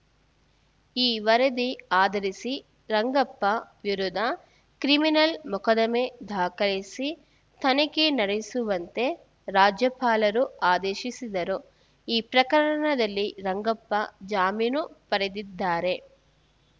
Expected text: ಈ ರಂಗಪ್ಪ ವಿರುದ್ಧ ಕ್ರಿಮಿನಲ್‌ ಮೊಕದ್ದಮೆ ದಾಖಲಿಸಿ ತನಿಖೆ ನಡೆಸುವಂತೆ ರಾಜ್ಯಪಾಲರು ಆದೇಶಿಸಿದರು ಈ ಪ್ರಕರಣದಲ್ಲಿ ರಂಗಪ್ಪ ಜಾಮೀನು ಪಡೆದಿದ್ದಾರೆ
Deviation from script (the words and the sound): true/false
true